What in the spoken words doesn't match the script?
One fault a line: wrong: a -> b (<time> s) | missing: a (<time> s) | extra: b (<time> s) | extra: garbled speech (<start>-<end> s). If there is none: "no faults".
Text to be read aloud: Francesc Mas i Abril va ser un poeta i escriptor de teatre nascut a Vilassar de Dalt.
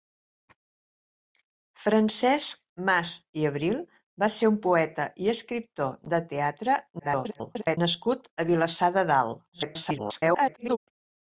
extra: garbled speech (7.0-7.8 s)
extra: garbled speech (9.5-10.8 s)